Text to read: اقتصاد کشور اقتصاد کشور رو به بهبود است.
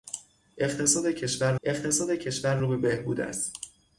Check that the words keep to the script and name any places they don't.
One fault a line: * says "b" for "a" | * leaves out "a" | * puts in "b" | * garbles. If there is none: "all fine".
all fine